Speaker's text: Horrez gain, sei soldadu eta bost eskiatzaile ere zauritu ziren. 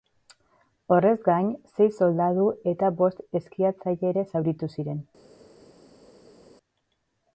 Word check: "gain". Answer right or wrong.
right